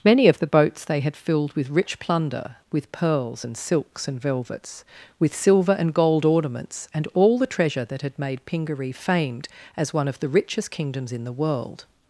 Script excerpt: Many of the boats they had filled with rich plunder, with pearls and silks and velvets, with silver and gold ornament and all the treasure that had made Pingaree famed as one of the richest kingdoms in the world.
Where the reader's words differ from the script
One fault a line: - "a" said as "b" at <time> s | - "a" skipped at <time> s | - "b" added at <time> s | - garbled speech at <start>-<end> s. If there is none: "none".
- "ornament" said as "ornaments" at 6.2 s